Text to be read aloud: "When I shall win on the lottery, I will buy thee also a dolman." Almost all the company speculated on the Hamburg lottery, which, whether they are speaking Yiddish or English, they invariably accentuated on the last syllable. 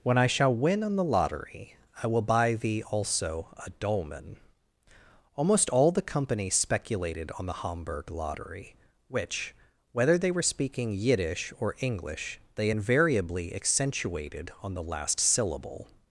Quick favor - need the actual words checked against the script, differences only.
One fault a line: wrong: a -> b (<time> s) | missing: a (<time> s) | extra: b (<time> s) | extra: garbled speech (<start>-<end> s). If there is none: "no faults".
wrong: are -> were (10.3 s)